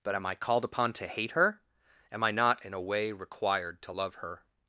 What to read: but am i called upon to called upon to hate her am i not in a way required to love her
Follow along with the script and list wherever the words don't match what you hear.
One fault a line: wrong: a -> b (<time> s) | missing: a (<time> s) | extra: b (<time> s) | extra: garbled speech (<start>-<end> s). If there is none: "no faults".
missing: called upon to (1.1 s)